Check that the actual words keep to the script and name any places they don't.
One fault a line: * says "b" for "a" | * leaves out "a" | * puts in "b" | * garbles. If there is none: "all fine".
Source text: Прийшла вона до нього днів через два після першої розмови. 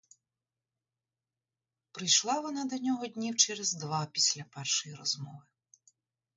all fine